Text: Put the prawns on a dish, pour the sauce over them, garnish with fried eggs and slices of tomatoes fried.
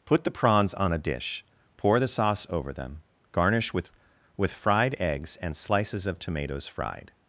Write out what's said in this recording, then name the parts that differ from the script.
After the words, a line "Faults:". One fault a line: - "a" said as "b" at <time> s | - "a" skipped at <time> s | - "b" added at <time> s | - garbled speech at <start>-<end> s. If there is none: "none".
Put the prawns on a dish, pour the sauce over them, garnish with with fried eggs and slices of tomatoes fried.
Faults:
- "with" added at 4.4 s